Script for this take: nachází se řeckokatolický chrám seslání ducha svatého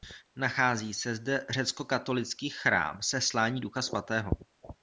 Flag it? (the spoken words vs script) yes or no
yes